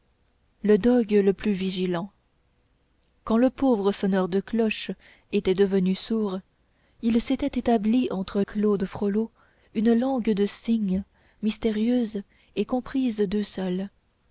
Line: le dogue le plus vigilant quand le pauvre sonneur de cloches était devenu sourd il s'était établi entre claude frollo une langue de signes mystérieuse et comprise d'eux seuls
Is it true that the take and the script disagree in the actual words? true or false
false